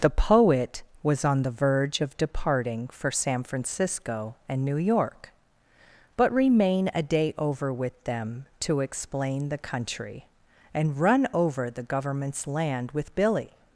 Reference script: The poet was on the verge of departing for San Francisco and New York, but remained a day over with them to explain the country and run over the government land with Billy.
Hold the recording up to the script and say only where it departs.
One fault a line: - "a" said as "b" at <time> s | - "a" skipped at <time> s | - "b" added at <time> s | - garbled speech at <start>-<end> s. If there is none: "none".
- "remained" said as "remain" at 6.3 s
- "government" said as "governments" at 11.8 s